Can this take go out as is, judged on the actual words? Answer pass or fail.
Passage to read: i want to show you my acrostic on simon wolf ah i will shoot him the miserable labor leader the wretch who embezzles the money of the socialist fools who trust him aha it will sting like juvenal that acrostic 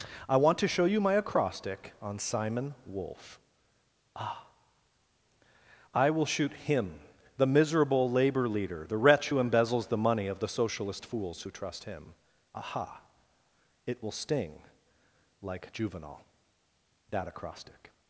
pass